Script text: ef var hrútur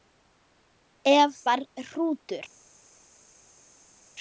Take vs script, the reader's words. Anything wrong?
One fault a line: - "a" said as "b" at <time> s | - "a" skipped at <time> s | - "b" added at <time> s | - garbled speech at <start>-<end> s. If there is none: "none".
none